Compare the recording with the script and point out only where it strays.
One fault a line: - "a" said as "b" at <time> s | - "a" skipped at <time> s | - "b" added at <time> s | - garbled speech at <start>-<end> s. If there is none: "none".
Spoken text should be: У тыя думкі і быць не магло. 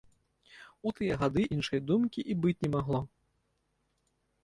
- "гады іншай" added at 1.2 s